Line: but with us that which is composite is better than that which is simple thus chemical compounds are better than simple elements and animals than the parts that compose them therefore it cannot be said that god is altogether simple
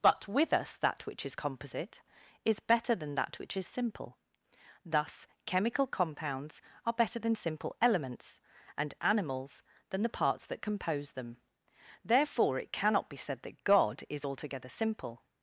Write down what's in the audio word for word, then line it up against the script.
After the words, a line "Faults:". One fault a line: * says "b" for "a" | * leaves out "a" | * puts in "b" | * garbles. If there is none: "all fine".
but with us that which is composite is better than that which is simple thus chemical compounds are better than simple elements and animals than the parts that compose them therefore it cannot be said that god is altogether simple
Faults:
all fine